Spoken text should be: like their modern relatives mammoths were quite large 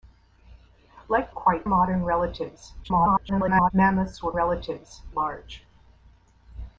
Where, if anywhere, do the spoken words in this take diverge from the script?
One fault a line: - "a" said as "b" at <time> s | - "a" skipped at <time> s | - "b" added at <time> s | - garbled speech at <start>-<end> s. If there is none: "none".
- "their" said as "quite" at 1.3 s
- garbled speech at 2.8-3.7 s
- "quite" said as "relatives" at 4.3 s